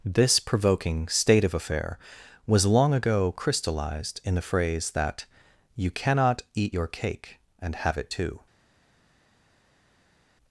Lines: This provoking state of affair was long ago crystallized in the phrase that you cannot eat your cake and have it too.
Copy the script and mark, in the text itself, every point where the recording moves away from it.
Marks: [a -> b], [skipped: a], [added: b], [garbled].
This provoking state of affair was long ago crystallized in the phrase that you cannot eat your cake and have it too.